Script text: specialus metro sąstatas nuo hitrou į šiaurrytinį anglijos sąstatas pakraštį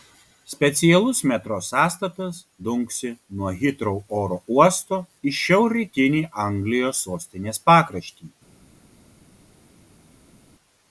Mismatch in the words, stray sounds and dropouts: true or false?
true